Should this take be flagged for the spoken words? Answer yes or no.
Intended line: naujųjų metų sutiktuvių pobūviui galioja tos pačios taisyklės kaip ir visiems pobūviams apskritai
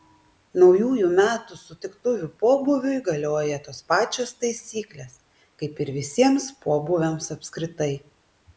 no